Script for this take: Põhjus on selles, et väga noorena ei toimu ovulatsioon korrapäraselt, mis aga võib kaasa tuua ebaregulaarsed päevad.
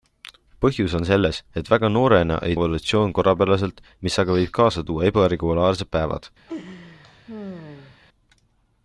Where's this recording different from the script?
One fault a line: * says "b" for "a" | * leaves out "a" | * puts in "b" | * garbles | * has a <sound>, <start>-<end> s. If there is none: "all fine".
* leaves out "toimu"
* has a laugh, 6.5-8.0 s